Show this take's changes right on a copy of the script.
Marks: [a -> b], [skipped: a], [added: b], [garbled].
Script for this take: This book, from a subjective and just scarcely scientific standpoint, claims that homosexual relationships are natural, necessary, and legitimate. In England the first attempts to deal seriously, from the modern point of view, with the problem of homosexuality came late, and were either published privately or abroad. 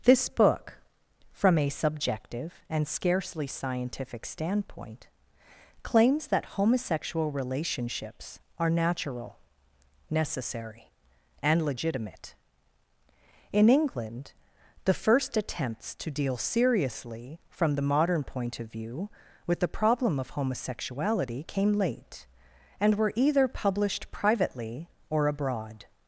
This book, from a subjective and [skipped: just] scarcely scientific standpoint, claims that homosexual relationships are natural, necessary, and legitimate. In England the first attempts to deal seriously, from the modern point of view, with the problem of homosexuality came late, and were either published privately or abroad.